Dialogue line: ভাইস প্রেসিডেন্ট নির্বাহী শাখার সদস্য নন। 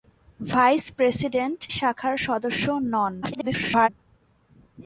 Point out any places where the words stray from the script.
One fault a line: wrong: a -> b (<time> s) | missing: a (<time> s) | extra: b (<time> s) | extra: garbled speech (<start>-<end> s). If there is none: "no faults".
missing: নির্বাহী (1.6 s)
extra: garbled speech (3.2-3.9 s)